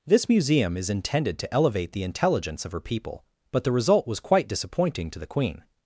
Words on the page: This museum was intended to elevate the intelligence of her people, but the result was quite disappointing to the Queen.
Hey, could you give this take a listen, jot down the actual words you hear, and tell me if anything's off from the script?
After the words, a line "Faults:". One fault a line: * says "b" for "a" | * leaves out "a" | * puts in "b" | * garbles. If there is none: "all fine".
This museum is intended to elevate the intelligence of her people, but the result was quite disappointing to the Queen.
Faults:
* says "is" for "was"